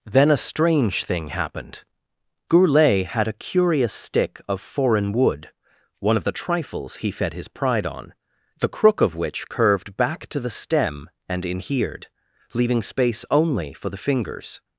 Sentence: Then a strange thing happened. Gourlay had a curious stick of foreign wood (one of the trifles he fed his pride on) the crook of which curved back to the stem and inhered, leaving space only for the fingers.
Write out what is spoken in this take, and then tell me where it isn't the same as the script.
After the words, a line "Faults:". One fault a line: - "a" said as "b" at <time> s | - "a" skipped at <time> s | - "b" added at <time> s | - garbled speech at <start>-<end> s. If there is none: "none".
Then a strange thing happened. Gourlay had a curious stick of foreign wood (one of the trifles he fed his pride on) the crook of which curved back to the stem and inhered, leaving space only for the fingers.
Faults:
none